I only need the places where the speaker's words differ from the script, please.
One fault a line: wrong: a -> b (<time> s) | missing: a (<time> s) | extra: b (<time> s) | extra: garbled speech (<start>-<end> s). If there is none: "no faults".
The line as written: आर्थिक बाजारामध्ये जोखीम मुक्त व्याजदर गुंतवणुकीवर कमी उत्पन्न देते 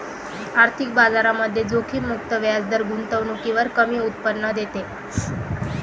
no faults